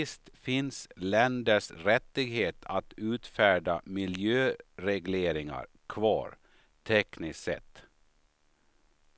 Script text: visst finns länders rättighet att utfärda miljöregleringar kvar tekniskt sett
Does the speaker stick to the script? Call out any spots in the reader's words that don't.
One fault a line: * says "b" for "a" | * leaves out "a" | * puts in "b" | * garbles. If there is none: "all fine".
all fine